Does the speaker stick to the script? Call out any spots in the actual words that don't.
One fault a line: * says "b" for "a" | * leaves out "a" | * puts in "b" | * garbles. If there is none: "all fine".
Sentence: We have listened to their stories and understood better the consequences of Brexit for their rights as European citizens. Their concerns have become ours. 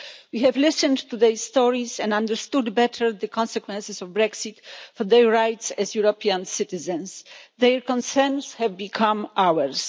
all fine